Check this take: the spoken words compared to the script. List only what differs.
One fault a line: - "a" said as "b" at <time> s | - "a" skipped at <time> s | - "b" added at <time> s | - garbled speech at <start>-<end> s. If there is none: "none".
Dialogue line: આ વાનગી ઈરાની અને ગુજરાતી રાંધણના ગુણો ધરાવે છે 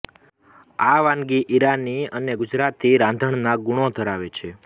none